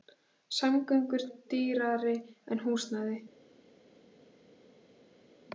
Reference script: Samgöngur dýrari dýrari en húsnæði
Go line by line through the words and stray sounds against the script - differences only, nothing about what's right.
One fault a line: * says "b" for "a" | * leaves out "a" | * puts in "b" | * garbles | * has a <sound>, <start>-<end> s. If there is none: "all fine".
* leaves out "dýrari"